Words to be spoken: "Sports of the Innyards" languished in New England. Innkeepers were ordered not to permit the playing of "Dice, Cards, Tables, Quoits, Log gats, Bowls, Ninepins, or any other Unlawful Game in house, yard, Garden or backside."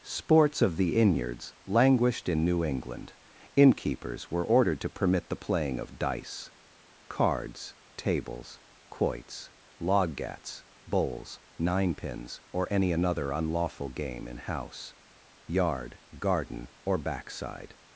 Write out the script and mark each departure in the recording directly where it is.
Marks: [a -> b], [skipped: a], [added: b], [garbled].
"Sports of the Innyards" languished in New England. Innkeepers were ordered [skipped: not] to permit the playing of "Dice, Cards, Tables, Quoits, Log gats, Bowls, Ninepins, or any [other -> another] Unlawful Game in house, yard, Garden or backside."